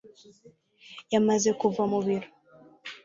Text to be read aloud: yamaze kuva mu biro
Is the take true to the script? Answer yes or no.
yes